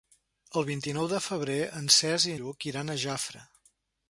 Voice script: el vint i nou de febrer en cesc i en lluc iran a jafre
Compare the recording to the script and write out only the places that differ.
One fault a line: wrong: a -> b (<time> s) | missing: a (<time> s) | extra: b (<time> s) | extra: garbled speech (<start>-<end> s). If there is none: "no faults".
missing: en (2.3 s)